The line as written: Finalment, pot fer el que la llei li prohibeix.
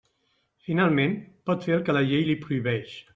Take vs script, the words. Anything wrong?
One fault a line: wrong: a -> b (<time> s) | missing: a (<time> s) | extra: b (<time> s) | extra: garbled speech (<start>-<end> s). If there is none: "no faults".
no faults